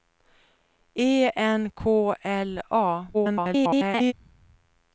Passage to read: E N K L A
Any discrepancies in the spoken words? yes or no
yes